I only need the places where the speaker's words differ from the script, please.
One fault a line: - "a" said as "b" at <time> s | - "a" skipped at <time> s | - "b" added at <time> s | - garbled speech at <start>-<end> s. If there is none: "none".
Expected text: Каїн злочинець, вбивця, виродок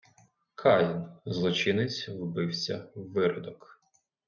none